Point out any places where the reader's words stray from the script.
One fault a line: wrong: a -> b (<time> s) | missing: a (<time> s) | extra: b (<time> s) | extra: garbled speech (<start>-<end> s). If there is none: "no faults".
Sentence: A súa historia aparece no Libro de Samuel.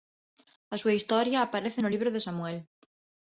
no faults